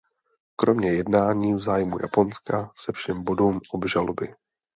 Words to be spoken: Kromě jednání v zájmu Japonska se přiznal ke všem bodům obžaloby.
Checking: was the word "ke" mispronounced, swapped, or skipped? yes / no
yes